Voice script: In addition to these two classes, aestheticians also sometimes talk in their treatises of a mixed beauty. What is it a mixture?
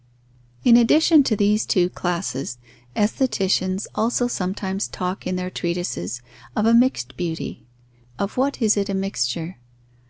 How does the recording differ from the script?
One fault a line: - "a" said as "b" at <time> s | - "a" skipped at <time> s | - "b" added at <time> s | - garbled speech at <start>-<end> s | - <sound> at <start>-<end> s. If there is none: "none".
- "Of" added at 8.2 s